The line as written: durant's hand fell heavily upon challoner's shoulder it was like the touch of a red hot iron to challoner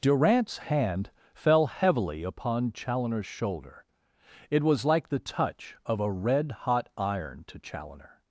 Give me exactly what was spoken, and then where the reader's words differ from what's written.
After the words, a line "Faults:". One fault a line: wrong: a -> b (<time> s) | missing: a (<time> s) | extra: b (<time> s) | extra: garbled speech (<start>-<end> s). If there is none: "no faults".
durant's hand fell heavily upon challoner's shoulder it was like the touch of a red hot iron to challoner
Faults:
no faults